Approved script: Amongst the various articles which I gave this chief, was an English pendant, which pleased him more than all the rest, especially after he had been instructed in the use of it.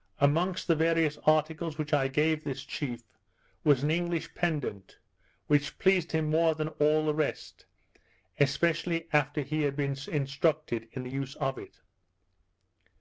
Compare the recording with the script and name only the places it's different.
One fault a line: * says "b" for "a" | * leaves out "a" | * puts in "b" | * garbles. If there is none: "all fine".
all fine